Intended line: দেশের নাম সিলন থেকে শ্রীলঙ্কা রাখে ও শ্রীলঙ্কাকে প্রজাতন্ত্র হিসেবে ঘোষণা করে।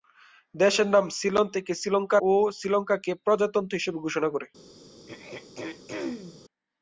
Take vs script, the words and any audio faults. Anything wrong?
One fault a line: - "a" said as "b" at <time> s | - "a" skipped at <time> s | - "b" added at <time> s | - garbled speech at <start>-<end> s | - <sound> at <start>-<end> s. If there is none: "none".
- "রাখে" skipped at 2.2 s
- throat clearing at 5.1-6.4 s